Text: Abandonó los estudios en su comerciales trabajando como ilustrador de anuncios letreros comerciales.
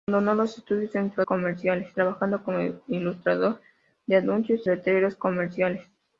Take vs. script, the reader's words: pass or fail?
pass